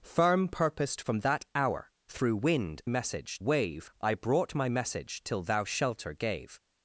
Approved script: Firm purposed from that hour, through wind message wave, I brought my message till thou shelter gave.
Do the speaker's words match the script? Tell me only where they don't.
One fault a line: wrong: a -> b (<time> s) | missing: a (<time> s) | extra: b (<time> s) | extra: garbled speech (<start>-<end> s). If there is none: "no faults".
no faults